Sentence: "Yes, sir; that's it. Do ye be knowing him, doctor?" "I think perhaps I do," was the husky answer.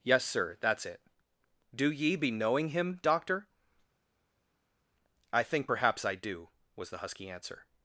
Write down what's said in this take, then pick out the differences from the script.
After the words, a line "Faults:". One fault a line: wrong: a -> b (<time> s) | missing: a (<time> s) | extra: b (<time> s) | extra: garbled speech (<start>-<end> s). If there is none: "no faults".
"Yes, sir; that's it. Do ye be knowing him, doctor?" "I think perhaps I do," was the husky answer.
Faults:
no faults